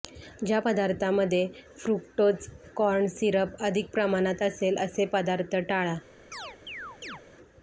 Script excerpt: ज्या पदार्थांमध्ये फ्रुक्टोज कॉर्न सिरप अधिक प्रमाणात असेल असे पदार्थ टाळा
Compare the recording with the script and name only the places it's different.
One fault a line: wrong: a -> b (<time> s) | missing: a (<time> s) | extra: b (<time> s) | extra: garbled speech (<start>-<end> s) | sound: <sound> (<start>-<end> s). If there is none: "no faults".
sound: chirp (6.3-7.2 s)